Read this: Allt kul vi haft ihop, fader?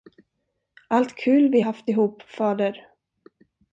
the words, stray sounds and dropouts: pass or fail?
pass